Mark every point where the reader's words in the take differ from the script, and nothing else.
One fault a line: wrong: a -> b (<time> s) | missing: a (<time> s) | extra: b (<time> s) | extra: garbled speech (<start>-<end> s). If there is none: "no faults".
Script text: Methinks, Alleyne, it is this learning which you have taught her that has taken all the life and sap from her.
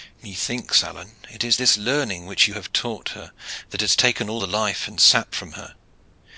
no faults